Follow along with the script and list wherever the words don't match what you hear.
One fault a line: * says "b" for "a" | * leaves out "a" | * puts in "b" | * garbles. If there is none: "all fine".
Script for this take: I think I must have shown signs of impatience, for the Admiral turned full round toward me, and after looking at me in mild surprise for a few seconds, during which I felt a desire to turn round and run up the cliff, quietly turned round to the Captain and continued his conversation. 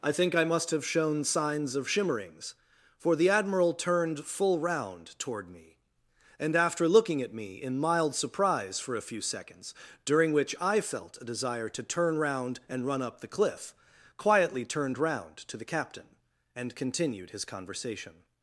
* says "shimmerings" for "impatience"